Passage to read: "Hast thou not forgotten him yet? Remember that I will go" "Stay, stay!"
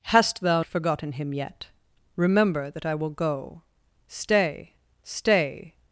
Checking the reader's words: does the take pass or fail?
fail